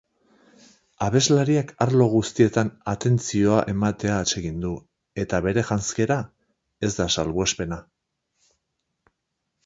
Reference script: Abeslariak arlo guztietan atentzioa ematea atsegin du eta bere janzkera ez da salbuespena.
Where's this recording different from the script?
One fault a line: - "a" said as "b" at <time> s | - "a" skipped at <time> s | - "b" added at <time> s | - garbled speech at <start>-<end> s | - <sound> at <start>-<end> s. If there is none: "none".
none